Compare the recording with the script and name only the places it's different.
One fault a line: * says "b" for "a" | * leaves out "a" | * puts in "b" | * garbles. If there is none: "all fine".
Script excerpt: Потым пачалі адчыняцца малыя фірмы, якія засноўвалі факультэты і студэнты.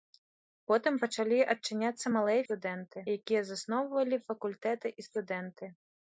* says "студэнты" for "фірмы"